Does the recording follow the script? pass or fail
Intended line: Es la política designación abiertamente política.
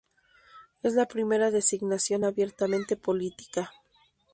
fail